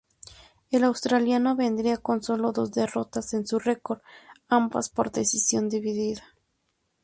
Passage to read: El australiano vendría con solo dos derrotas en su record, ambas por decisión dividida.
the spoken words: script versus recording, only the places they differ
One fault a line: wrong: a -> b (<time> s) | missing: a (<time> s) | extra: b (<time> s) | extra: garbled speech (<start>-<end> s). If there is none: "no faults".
no faults